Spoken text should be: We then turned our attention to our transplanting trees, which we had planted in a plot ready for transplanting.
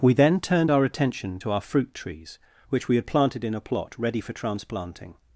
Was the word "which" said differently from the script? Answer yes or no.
no